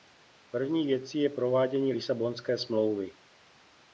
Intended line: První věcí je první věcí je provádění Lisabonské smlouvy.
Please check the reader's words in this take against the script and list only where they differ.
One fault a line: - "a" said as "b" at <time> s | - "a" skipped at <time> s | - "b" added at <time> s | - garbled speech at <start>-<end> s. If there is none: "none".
- "první věcí je" skipped at 1.3 s